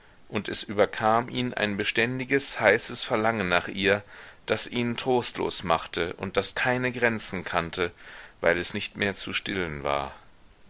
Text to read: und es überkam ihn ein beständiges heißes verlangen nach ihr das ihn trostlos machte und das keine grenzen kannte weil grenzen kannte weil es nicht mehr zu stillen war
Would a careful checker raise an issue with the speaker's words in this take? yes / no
yes